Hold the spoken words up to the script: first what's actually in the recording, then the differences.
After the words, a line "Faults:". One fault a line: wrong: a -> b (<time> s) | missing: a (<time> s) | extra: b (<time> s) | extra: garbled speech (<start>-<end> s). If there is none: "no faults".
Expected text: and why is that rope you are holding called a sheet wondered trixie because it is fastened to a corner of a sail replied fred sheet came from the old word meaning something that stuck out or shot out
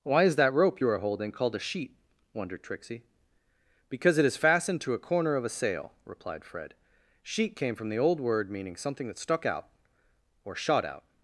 why is that rope you are holding called a sheet wondered trixie because it is fastened to a corner of a sail replied fred sheet came from the old word meaning something that stuck out or shot out
Faults:
missing: and (0.0 s)